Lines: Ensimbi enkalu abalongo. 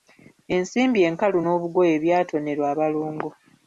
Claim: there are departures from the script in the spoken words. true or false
true